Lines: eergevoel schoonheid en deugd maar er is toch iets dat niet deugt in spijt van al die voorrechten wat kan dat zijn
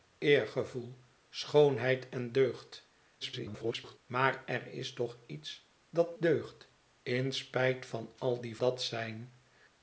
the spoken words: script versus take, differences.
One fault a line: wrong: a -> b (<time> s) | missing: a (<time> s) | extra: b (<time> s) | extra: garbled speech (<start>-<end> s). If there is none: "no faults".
extra: garbled speech (3.2-4.0 s)
missing: niet (6.2 s)
missing: voorrechten wat kan (8.6 s)